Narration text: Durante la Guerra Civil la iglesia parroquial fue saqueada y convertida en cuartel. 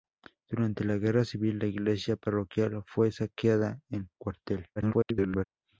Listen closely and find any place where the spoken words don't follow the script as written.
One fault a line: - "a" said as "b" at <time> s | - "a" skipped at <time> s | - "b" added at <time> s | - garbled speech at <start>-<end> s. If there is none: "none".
- "y convertida" skipped at 3.8 s
- garbled speech at 4.8-5.4 s